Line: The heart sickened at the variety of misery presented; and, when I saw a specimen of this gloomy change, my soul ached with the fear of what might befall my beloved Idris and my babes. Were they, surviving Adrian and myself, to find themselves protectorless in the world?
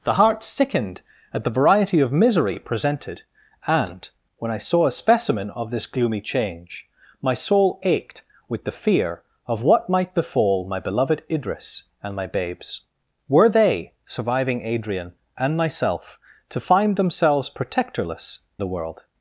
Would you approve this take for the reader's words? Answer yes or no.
no